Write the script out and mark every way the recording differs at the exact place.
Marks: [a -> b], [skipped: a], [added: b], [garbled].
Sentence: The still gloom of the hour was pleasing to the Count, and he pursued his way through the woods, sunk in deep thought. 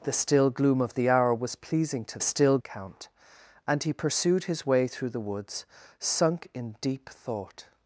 The still gloom of the hour was pleasing to [the -> still] Count, and he pursued his way through the woods, sunk in deep thought.